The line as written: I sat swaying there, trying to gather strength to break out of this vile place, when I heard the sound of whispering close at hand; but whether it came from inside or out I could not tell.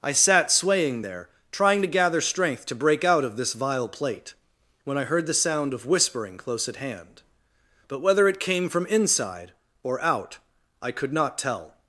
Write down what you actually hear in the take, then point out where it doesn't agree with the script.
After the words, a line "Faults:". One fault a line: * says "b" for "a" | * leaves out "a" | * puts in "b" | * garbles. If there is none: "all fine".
I sat swaying there, trying to gather strength to break out of this vile plate, when I heard the sound of whispering close at hand; but whether it came from inside or out I could not tell.
Faults:
* says "plate" for "place"